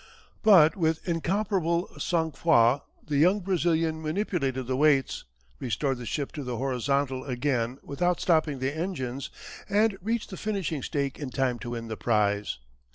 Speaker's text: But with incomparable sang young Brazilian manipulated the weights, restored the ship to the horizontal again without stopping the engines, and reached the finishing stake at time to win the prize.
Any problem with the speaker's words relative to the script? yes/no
yes